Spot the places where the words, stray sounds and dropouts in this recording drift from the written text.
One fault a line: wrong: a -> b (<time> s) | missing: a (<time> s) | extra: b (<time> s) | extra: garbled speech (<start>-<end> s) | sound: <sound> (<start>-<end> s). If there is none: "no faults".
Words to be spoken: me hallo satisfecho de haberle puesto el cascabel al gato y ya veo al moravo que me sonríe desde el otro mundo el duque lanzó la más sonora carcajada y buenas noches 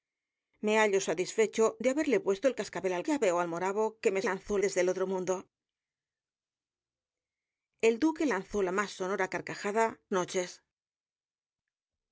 missing: gato y (3.0 s)
wrong: sonríe -> lanzó (4.2 s)
missing: y buenas (10.0 s)